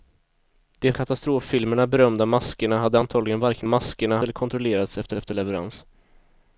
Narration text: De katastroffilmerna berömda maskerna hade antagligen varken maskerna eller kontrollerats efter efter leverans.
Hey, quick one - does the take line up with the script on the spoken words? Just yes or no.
yes